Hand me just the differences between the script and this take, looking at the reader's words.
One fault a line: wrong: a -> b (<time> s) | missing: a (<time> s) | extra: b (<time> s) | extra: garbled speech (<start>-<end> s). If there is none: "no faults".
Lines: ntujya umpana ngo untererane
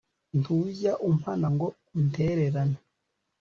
no faults